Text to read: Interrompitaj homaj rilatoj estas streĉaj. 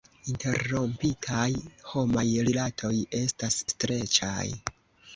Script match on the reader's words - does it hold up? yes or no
yes